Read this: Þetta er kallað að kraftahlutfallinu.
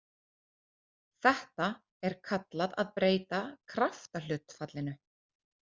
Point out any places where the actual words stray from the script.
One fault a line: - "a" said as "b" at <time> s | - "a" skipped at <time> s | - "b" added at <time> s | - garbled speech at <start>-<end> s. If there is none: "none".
- "breyta" added at 3.0 s